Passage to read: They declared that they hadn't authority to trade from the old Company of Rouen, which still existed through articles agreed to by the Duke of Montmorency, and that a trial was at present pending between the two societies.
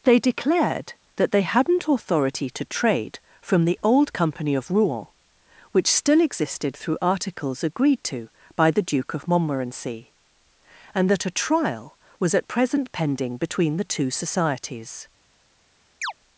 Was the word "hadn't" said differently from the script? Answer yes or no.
no